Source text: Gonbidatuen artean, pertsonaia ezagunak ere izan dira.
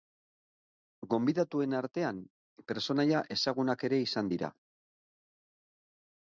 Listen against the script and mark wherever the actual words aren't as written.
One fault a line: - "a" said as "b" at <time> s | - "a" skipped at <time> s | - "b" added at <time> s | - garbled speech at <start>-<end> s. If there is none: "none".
none